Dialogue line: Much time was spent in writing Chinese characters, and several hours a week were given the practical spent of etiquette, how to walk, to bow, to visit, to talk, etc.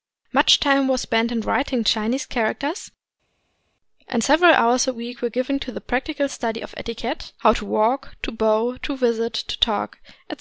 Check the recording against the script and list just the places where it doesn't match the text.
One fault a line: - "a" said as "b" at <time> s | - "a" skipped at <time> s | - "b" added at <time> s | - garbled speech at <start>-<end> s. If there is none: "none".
- "to" added at 5.6 s
- "spent" said as "study" at 6.3 s